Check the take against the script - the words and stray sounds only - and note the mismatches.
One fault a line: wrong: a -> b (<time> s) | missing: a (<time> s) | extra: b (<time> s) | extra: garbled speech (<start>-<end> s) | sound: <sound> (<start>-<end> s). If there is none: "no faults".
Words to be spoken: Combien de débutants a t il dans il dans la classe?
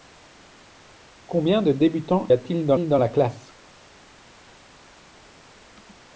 no faults